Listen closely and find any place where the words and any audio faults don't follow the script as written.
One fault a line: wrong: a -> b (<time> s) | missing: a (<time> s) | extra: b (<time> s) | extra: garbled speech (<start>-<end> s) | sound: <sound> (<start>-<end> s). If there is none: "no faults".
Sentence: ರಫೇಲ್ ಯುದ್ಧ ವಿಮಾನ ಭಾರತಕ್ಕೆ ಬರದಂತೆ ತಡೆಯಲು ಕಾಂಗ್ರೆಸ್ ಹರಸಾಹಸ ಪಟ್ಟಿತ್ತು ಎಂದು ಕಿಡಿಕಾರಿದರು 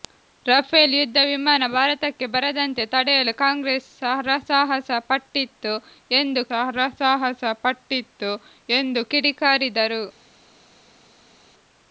extra: ಹರಸಾಹಸ ಪಟ್ಟಿತ್ತು ಎಂದು (6.6 s)